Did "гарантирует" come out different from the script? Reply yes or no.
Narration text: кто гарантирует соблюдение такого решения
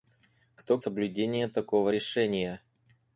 yes